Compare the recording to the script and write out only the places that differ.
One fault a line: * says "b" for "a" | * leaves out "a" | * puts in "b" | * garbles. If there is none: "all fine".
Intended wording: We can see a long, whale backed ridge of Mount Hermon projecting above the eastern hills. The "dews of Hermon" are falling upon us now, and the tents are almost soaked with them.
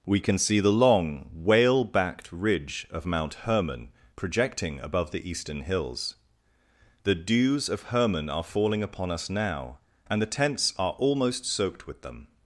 * says "the" for "a"